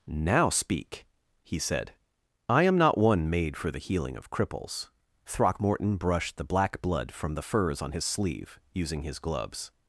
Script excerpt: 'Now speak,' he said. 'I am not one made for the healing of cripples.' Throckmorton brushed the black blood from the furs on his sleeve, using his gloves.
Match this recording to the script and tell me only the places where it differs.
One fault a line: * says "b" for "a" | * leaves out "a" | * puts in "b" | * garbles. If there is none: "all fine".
all fine